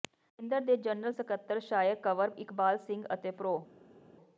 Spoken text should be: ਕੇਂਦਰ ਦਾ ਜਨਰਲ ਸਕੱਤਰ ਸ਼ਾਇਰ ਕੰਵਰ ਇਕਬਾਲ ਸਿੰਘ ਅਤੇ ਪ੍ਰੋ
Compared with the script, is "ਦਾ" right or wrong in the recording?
wrong